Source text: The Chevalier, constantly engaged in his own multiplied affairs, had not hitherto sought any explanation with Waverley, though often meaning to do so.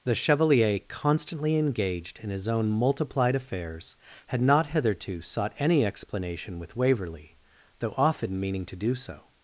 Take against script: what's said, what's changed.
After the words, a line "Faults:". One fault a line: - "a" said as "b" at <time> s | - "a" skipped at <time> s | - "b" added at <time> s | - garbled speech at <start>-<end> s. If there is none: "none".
The Chevalier, constantly engaged in his own multiplied affairs, had not hitherto sought any explanation with Waverley, though often meaning to do so.
Faults:
none